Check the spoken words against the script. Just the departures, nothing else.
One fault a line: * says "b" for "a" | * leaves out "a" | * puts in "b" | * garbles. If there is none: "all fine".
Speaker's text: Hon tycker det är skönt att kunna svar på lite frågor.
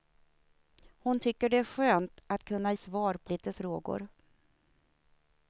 all fine